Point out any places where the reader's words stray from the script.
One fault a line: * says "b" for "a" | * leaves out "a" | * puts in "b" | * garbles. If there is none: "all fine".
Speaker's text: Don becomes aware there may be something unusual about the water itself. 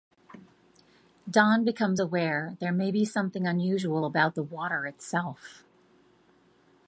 all fine